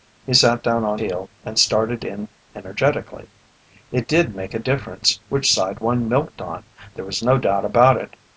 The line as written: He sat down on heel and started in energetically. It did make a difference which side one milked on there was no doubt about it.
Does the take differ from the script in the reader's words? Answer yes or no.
no